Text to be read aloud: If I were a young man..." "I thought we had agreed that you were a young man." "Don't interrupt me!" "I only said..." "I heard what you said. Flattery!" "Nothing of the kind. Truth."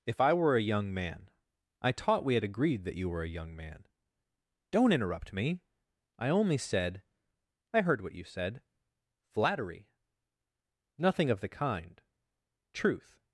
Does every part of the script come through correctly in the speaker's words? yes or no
no